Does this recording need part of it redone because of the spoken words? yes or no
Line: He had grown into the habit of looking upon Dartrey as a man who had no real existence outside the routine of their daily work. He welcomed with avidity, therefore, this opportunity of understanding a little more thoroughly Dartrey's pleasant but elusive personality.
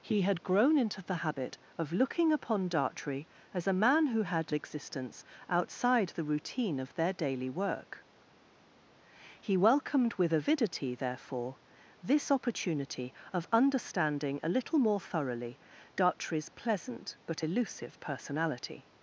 yes